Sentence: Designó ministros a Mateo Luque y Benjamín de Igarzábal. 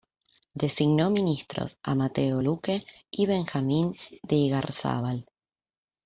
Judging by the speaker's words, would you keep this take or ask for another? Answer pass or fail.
pass